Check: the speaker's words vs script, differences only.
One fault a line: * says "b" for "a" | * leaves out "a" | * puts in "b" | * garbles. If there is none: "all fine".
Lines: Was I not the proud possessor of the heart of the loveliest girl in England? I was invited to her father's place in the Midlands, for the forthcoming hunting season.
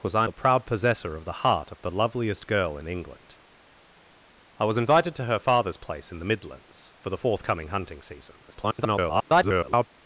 * leaves out "not"
* garbles